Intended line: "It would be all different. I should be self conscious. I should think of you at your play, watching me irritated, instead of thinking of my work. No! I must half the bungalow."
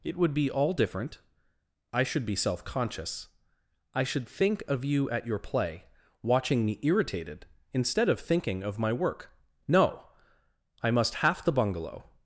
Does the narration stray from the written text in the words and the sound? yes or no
no